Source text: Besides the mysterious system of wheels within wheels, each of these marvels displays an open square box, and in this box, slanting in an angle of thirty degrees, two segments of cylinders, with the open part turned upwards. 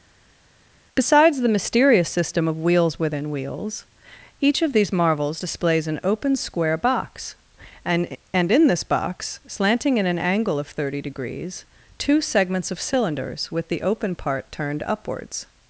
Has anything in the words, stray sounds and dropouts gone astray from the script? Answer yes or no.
yes